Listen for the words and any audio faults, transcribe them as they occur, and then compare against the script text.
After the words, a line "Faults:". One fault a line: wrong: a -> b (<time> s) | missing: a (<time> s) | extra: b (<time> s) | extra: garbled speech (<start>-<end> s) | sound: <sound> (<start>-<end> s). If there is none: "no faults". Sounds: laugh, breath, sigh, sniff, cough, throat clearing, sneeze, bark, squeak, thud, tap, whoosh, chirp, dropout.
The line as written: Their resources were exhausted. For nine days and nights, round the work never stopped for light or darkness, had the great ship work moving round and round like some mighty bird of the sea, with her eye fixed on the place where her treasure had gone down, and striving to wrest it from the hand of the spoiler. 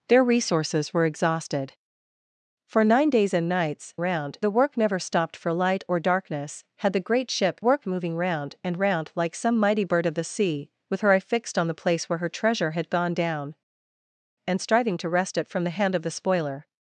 Their resources were exhausted. For nine days and nights, round the work never stopped for light or darkness, had the great ship work moving round and round like some mighty bird of the sea, with her eye fixed on the place where her treasure had gone down, and striving to wrest it from the hand of the spoiler.
Faults:
no faults